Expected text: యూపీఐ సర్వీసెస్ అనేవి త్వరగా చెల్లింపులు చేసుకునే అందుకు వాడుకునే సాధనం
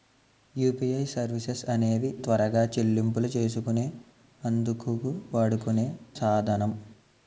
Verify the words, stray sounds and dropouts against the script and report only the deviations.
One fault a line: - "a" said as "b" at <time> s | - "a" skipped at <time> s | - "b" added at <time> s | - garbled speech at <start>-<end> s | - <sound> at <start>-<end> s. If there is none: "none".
none